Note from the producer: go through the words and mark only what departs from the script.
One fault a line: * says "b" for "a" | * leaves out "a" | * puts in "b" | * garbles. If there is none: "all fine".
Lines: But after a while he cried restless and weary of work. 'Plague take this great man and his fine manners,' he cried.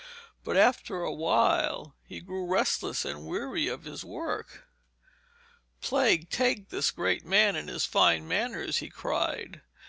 * says "grew" for "cried"
* puts in "his"